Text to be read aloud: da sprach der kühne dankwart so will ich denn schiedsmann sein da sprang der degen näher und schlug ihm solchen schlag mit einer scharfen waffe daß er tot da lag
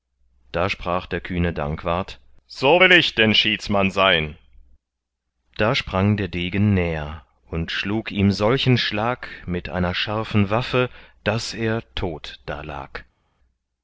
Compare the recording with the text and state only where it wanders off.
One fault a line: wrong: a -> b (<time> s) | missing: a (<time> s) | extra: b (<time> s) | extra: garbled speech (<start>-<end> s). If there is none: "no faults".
no faults